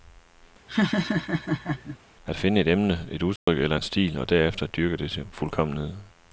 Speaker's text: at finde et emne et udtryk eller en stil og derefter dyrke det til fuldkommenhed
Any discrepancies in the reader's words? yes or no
no